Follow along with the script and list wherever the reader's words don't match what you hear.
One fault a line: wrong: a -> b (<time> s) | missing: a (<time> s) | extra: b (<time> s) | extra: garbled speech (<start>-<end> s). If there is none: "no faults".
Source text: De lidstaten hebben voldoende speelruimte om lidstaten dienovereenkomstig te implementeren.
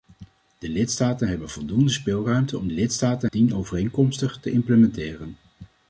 no faults